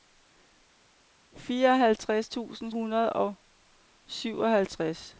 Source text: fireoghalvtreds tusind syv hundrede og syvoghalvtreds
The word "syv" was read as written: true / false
false